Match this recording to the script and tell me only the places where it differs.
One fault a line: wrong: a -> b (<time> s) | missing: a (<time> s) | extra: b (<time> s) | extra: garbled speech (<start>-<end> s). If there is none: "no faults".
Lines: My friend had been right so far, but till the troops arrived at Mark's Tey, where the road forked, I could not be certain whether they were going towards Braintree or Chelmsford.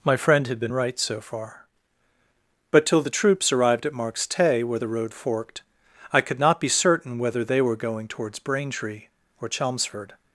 no faults